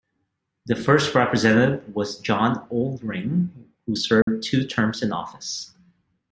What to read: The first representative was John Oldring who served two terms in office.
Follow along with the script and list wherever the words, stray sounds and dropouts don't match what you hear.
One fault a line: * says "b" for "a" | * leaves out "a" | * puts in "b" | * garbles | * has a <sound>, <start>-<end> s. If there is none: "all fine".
* has a dropout, 4.2-4.3 s